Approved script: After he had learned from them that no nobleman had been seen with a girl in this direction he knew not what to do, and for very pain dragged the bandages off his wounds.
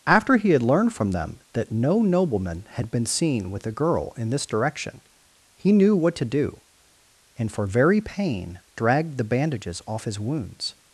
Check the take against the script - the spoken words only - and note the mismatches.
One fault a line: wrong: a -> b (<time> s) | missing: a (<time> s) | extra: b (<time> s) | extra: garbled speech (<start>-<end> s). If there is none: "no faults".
missing: not (5.9 s)